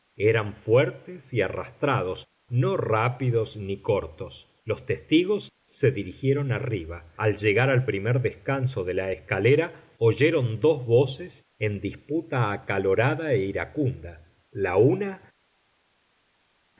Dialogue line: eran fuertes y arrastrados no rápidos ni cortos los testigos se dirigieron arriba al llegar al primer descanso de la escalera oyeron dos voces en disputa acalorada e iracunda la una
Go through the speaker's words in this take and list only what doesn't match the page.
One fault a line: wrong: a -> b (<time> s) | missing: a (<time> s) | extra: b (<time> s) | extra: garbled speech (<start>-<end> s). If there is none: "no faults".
no faults